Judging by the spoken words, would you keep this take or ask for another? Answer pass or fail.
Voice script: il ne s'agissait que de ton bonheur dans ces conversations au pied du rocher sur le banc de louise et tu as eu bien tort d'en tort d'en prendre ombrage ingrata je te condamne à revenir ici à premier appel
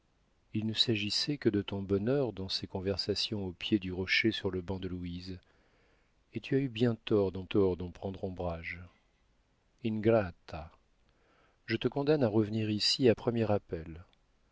pass